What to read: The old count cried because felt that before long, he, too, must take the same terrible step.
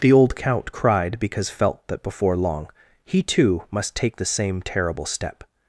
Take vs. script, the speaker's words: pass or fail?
pass